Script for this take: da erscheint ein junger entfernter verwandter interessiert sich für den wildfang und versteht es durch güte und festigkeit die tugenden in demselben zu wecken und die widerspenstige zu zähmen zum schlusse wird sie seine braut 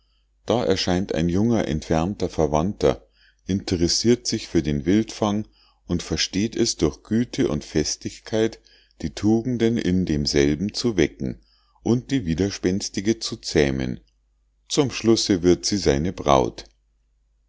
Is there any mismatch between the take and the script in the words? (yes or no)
no